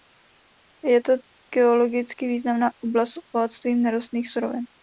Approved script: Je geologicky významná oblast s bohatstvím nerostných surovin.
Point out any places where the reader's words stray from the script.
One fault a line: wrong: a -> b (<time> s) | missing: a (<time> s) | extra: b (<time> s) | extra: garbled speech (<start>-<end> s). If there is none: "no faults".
extra: to (1.0 s)